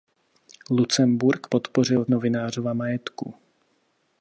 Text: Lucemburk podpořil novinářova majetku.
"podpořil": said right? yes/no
yes